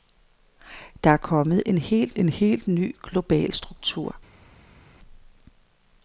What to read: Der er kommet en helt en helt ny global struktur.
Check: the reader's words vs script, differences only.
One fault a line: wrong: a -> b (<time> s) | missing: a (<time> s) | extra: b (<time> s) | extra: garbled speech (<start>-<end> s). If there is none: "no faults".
no faults